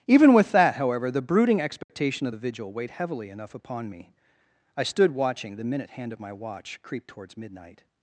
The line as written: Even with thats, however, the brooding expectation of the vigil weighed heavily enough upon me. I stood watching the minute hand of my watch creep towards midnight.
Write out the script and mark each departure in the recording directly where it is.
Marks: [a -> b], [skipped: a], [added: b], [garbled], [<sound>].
Even with [thats, -> that] however, the brooding expectation [dropout] of the vigil weighed heavily enough upon me. I stood watching the minute hand of my watch creep towards midnight.